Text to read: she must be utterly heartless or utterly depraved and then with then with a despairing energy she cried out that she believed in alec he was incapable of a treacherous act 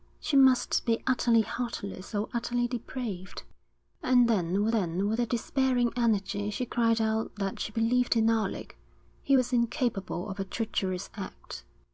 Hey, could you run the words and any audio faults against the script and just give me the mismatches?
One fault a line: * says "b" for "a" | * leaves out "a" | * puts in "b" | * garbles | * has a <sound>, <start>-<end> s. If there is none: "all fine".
all fine